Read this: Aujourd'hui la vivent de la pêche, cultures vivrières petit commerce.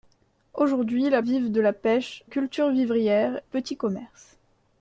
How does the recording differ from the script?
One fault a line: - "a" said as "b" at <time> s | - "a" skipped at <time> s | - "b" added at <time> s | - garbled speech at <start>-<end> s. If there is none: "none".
none